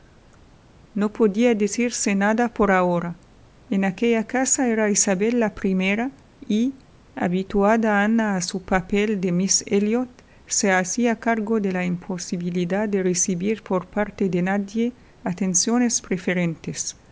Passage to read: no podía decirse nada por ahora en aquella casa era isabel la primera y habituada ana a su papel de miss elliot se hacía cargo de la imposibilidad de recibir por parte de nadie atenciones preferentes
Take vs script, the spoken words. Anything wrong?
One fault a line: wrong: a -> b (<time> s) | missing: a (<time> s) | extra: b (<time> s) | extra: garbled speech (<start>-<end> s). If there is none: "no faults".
no faults